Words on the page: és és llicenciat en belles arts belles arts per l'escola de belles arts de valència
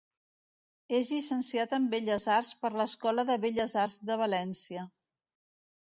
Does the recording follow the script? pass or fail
fail